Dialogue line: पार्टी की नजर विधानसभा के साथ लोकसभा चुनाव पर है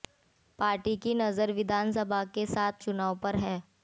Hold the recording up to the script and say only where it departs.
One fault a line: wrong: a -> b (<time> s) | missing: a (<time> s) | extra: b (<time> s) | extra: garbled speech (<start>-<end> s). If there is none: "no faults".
missing: लोकसभा (2.8 s)